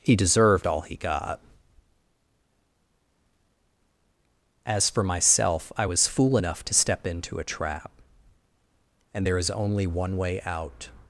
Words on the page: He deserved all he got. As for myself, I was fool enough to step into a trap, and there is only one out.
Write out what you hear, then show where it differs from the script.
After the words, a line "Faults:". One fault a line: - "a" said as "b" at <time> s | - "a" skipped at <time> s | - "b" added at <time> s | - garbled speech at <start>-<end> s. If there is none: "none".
He deserved all he got. As for myself, I was fool enough to step into a trap, and there is only one way out.
Faults:
- "way" added at 10.2 s